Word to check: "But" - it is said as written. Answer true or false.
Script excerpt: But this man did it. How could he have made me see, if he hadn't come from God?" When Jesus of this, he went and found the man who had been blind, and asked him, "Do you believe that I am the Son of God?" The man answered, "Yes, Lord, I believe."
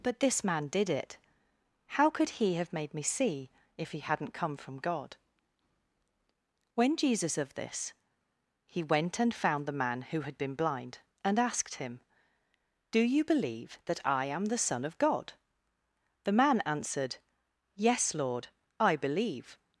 true